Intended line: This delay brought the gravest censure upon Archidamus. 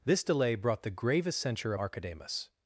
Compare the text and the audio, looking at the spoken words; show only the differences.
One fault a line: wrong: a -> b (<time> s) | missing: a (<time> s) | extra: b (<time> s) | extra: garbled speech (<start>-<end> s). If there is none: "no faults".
missing: upon (1.8 s)